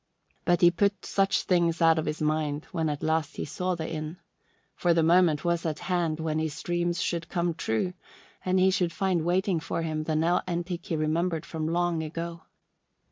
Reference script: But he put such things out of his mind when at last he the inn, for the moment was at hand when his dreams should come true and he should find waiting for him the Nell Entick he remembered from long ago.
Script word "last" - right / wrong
right